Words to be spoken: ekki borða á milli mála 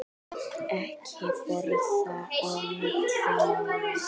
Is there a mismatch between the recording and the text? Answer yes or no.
no